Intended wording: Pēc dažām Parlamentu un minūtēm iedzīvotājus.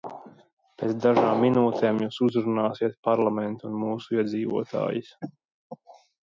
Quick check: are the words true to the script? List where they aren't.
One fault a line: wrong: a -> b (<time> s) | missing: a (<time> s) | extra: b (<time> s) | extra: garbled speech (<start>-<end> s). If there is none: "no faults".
extra: minūtēm jūs uzrunāsiet (1.5 s)
wrong: minūtēm -> mūsu (3.9 s)